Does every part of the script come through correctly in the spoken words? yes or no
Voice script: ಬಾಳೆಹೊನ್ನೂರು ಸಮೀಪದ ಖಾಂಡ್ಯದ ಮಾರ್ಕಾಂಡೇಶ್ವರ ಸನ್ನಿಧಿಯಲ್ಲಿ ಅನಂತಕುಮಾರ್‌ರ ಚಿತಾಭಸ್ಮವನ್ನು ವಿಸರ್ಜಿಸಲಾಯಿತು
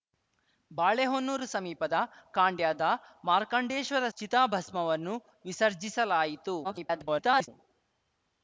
no